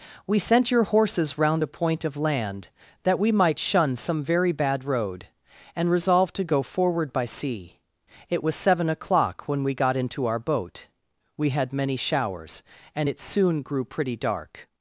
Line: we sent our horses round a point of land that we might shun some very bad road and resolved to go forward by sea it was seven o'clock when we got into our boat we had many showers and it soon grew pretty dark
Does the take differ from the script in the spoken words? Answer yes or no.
yes